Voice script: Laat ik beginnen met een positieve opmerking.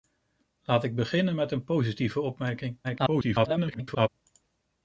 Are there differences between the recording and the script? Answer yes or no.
yes